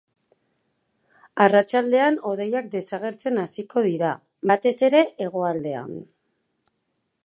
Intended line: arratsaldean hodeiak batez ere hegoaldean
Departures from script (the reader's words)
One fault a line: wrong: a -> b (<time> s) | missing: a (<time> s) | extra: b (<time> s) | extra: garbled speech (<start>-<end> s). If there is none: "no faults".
extra: desagertzen hasiko dira (2.8 s)